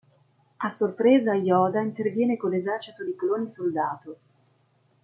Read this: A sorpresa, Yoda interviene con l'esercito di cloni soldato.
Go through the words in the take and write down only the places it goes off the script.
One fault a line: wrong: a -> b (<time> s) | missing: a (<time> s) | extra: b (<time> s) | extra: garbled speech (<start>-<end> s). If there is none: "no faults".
no faults